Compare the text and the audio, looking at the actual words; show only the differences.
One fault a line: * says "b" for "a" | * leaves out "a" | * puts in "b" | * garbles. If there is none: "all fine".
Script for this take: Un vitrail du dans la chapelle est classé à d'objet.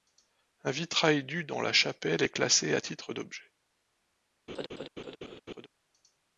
* puts in "titre"